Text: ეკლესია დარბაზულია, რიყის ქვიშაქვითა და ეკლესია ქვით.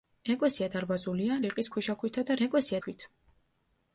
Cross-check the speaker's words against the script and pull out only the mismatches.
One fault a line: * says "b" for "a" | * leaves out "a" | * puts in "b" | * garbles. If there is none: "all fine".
all fine